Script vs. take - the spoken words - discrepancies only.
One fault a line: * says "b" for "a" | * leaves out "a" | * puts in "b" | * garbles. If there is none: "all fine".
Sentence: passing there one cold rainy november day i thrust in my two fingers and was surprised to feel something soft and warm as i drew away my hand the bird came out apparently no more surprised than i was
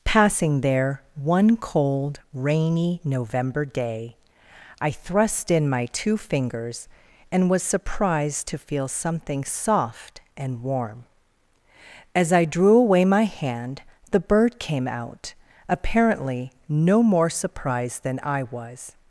all fine